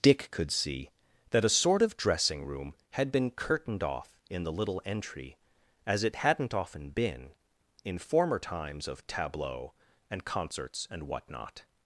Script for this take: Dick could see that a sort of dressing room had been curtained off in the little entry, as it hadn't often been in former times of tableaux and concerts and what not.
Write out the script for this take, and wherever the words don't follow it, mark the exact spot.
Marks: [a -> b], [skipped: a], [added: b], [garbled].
Dick could see that a sort of dressing room had been curtained off in the little entry, as it hadn't often been in former times of tableaux and concerts and what not.